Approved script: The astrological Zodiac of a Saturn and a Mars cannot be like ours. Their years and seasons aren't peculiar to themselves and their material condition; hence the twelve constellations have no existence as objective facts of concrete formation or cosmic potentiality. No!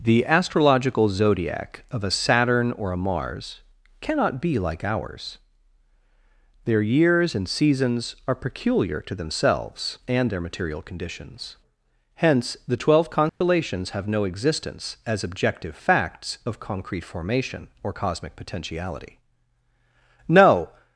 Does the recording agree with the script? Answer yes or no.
no